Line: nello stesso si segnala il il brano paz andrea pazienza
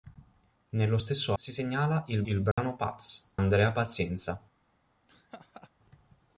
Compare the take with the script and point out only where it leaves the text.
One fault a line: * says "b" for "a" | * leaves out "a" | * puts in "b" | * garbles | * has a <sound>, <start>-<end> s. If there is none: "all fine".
* has a dropout, 2.5-2.6 s
* has a laugh, 5.1-5.7 s